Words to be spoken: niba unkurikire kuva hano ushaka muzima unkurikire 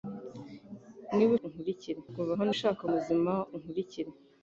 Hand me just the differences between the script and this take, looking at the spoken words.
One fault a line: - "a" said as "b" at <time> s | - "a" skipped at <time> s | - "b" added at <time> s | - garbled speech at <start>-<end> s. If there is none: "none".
none